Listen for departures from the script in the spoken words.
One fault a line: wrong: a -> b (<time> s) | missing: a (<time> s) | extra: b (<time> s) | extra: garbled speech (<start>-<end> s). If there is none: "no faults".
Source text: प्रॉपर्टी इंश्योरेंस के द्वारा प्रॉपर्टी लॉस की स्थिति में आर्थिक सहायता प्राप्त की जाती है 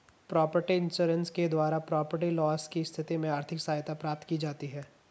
no faults